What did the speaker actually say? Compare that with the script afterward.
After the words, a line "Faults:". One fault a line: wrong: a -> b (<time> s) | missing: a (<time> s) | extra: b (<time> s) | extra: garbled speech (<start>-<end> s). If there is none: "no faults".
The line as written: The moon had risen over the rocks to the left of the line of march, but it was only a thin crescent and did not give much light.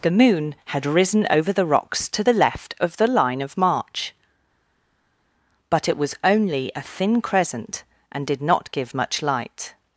The moon had risen over the rocks to the left of the line of march, but it was only a thin crescent and did not give much light.
Faults:
no faults